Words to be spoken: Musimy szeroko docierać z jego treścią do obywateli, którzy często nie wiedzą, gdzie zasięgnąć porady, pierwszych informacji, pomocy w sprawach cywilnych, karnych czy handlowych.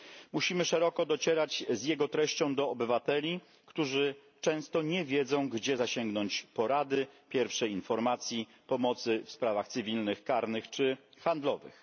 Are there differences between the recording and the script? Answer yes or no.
no